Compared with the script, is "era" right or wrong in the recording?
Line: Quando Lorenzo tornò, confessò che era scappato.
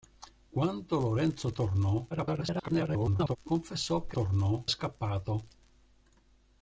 wrong